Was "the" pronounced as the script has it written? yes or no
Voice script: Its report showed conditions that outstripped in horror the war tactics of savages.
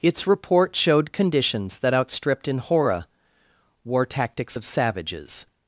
no